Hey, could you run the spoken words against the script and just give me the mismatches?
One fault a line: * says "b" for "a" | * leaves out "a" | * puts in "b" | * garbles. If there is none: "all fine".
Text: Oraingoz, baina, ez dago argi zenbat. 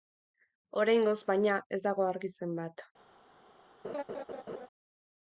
all fine